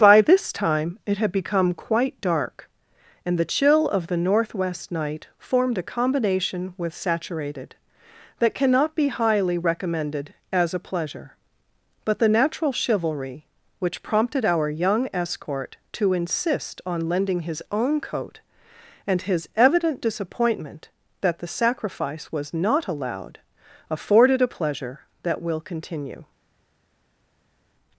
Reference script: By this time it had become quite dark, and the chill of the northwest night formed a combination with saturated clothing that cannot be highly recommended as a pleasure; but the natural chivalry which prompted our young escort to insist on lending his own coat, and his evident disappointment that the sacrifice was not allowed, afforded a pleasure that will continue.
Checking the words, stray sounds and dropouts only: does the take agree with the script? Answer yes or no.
no